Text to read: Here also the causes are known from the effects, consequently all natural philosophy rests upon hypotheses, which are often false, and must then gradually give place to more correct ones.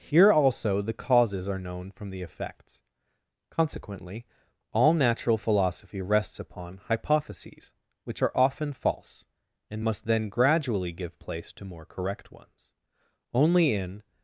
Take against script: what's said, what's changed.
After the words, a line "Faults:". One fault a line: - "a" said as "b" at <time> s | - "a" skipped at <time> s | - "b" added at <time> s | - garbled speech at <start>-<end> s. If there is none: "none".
Here also the causes are known from the effects, consequently all natural philosophy rests upon hypotheses, which are often false, and must then gradually give place to more correct ones. Only in
Faults:
- "Only in" added at 13.3 s